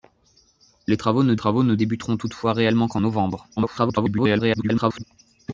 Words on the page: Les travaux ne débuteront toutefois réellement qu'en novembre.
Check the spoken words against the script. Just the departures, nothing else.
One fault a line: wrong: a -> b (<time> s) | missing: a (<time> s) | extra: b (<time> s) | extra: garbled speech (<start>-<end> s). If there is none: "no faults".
extra: travaux ne (1.4 s)
extra: garbled speech (3.6-5.0 s)